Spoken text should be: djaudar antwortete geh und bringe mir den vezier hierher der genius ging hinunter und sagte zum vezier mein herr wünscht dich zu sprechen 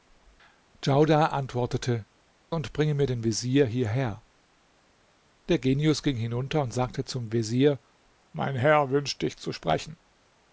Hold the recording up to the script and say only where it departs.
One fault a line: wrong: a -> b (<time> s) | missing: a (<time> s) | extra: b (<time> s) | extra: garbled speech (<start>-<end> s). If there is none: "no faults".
missing: geh (2.0 s)